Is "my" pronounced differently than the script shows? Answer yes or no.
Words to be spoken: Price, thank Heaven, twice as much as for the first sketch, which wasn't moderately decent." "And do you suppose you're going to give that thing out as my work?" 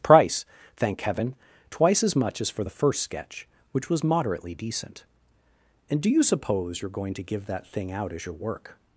yes